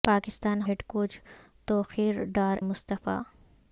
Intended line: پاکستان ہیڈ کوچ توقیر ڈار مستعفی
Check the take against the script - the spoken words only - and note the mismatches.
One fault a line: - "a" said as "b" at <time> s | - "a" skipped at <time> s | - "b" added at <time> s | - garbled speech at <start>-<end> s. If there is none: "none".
none